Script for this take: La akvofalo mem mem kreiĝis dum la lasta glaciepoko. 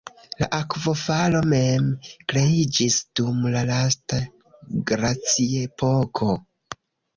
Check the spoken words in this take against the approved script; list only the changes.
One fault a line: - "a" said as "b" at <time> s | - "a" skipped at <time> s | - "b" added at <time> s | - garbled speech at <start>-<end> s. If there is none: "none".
- "mem" skipped at 1.9 s